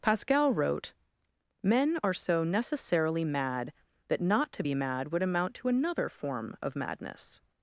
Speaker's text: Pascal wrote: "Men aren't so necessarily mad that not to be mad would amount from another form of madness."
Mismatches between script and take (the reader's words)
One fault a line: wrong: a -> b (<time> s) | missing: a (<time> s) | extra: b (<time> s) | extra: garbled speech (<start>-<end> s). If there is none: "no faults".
wrong: aren't -> are (2.0 s)
wrong: from -> to (5.5 s)